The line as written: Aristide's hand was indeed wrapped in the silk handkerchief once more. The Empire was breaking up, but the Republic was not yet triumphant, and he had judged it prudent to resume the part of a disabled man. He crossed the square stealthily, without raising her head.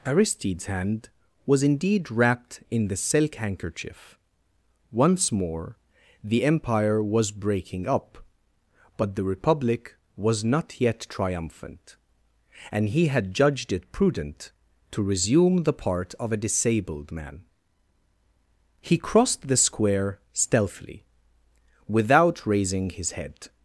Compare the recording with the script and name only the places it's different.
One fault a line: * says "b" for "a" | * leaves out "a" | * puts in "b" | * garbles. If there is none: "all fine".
* says "his" for "her"